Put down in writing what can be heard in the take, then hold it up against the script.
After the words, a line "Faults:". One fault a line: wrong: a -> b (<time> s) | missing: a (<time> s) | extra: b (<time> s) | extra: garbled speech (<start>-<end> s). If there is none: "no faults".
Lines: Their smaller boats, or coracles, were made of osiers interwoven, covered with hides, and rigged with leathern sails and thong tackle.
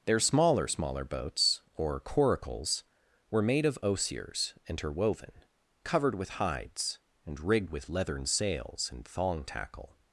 Their smaller smaller boats, or coracles, were made of osiers interwoven, covered with hides, and rigged with leathern sails and thong tackle.
Faults:
extra: smaller (0.7 s)